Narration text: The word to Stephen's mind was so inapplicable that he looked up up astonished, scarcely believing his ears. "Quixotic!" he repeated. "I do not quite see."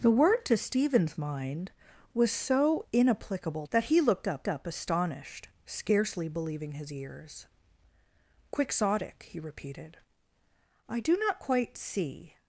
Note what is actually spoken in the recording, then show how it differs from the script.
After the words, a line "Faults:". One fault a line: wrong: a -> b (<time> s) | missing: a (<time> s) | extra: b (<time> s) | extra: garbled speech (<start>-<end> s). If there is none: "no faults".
The word to Stephen's mind was so inapplicable that he looked up up astonished, scarcely believing his ears. "Quixotic!" he repeated. "I do not quite see."
Faults:
no faults